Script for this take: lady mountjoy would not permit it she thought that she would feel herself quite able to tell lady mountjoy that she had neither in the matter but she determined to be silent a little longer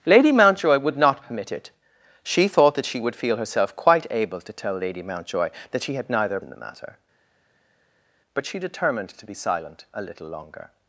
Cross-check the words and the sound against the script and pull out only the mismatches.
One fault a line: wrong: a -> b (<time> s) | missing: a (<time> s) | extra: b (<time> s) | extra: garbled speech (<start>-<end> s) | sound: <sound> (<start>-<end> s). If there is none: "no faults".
no faults